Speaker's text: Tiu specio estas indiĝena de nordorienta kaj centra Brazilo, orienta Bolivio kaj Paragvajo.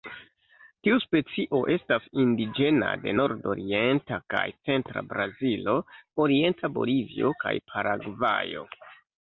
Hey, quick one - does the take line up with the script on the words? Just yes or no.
yes